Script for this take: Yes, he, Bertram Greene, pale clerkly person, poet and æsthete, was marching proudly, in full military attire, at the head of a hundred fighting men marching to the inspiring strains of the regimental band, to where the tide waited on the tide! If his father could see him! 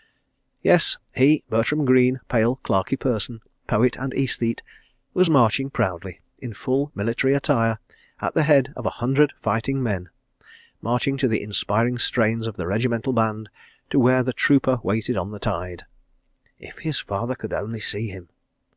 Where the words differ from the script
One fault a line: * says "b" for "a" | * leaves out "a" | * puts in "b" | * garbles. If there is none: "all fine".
* says "trooper" for "tide"
* puts in "only"